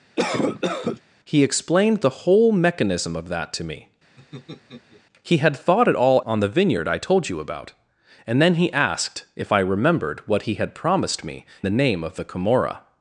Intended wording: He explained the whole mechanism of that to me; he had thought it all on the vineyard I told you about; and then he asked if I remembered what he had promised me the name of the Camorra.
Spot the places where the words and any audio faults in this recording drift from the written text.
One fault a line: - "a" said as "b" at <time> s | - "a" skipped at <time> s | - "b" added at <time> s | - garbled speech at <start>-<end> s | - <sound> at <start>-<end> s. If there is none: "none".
- cough at 0.2-1.0 s
- laugh at 4.2-5.0 s